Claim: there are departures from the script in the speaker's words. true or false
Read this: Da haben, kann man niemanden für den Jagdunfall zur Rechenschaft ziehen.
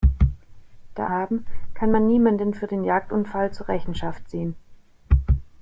false